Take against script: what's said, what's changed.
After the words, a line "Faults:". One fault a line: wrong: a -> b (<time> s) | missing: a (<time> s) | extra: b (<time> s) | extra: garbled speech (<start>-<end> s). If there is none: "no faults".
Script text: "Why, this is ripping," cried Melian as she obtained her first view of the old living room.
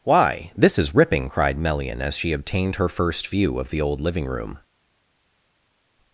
"Why, this is ripping," cried Melian as she obtained her first view of the old living room.
Faults:
no faults